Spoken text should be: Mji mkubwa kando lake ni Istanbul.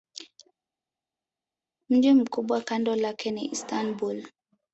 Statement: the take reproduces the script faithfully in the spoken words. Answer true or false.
true